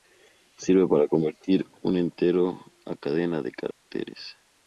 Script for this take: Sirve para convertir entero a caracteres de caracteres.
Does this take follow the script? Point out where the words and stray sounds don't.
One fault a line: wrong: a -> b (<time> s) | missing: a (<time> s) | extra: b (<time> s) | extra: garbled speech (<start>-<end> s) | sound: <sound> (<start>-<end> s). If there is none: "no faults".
extra: un (1.8 s)
wrong: caracteres -> cadena (3.0 s)
sound: dropout (3.7-3.9 s)